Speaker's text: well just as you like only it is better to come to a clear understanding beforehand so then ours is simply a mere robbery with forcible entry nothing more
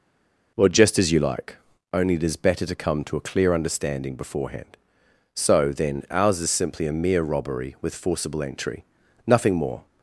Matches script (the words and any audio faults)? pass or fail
pass